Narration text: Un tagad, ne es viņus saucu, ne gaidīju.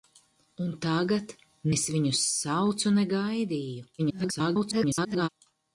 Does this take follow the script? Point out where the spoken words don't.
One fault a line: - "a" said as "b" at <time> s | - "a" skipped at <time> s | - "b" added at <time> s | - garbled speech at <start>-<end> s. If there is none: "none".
- "ne" skipped at 1.3 s
- garbled speech at 4.0-5.3 s